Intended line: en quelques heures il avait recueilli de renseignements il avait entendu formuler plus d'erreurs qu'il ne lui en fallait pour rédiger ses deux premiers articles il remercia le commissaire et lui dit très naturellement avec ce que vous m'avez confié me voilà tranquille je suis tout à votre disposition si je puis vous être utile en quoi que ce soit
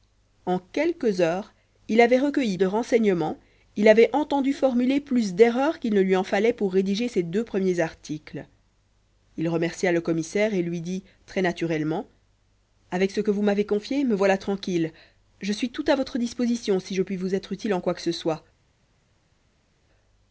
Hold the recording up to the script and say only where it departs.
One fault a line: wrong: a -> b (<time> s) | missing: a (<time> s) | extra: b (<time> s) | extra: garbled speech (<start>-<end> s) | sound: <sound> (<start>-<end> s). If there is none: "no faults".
no faults